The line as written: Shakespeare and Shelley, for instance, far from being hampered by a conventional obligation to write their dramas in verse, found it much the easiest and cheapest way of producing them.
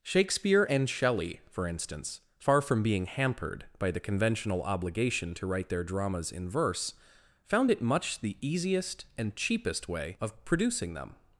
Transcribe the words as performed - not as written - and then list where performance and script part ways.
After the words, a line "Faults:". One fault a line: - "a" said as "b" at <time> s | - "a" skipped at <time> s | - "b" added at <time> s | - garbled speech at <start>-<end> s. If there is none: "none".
Shakespeare and Shelley, for instance, far from being hampered by the conventional obligation to write their dramas in verse, found it much the easiest and cheapest way of producing them.
Faults:
- "a" said as "the" at 3.9 s